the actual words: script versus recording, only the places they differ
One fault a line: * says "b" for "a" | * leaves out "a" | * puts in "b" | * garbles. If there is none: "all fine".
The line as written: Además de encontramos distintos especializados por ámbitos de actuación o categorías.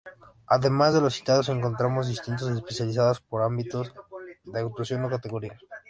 * puts in "los citados"